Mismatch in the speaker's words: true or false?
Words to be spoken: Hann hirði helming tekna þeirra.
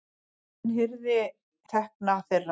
true